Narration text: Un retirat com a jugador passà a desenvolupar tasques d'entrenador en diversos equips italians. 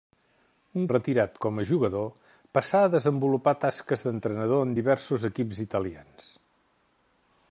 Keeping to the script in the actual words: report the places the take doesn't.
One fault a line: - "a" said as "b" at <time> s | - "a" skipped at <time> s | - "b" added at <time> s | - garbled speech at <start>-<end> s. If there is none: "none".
none